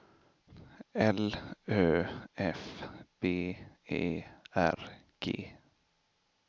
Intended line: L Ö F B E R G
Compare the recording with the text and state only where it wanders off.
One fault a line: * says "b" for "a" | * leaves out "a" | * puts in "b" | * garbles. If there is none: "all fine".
all fine